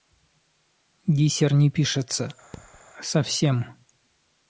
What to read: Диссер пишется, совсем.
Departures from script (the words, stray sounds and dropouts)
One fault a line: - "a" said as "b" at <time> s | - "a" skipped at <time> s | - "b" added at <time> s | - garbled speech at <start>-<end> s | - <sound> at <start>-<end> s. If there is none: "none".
- "не" added at 1.5 s
- thud at 2.5-2.8 s